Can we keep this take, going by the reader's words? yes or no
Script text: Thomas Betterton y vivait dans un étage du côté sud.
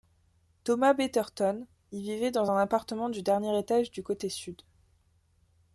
no